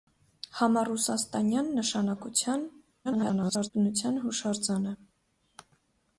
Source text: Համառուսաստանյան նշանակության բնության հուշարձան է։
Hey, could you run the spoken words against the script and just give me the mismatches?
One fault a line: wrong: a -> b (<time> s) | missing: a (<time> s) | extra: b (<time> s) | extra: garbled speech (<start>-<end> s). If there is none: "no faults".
extra: garbled speech (3.0-3.7 s)